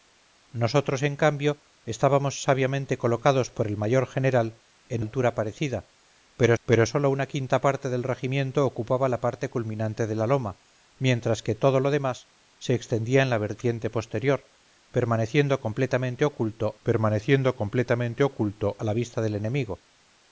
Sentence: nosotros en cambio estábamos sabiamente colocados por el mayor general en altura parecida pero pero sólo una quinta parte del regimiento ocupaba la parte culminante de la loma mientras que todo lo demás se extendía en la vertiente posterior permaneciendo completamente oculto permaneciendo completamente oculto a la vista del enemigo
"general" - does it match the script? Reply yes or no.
yes